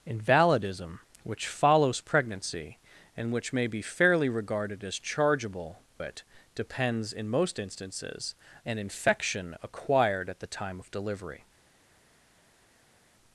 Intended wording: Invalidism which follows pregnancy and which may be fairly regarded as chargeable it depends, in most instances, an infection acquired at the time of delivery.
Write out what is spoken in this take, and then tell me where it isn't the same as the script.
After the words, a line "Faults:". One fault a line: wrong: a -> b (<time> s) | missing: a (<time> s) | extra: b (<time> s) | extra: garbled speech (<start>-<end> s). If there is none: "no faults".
Invalidism which follows pregnancy and which may be fairly regarded as chargeable it depends, in most instances, an infection acquired at the time of delivery.
Faults:
no faults